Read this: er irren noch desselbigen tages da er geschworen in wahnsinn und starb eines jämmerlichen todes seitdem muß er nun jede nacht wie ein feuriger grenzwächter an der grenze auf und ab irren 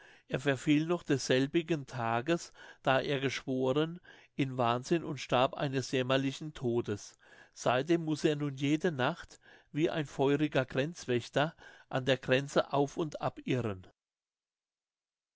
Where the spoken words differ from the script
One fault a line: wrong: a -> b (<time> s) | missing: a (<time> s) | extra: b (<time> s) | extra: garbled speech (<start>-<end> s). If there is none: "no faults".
wrong: irren -> verfiel (0.4 s)